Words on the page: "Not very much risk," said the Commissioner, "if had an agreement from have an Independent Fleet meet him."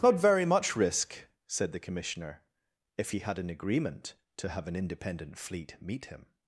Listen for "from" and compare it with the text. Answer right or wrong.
wrong